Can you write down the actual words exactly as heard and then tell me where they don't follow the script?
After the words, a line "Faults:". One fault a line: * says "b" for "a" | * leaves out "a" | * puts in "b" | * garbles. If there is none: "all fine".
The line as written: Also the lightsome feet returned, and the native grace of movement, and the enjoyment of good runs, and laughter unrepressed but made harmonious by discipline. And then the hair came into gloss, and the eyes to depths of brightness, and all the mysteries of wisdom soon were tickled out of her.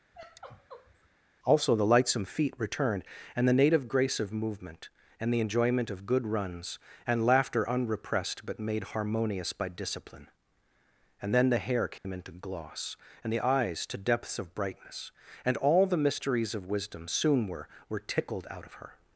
Also the lightsome feet returned, and the native grace of movement, and the enjoyment of good runs, and laughter unrepressed but made harmonious by discipline. And then the hair came into gloss, and the eyes to depths of brightness, and all the mysteries of wisdom soon were were tickled out of her.
Faults:
* puts in "were"